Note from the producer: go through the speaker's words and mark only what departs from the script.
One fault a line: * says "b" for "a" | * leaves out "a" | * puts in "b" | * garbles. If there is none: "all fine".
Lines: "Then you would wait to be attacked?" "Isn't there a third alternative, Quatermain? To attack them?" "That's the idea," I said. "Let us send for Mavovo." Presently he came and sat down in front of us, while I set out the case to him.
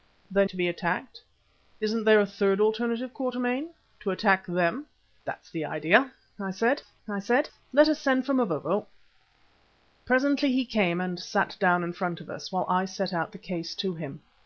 * leaves out "you would wait"
* puts in "I said"